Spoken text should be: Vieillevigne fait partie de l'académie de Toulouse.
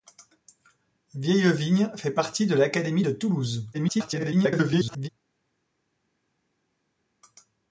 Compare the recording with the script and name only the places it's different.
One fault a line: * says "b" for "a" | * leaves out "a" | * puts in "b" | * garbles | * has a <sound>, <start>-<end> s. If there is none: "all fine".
* garbles